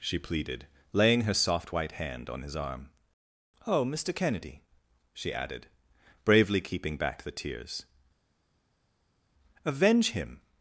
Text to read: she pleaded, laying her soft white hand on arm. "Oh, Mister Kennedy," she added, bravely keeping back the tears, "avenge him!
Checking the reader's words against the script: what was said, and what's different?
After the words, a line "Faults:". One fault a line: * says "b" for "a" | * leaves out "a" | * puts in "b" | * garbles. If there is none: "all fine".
she pleaded, laying her soft white hand on his arm. "Oh, Mister Kennedy," she added, bravely keeping back the tears, "avenge him!
Faults:
* puts in "his"